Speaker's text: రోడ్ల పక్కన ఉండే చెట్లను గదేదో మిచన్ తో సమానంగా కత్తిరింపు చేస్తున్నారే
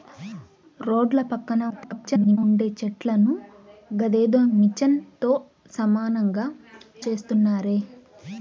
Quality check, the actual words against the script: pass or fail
fail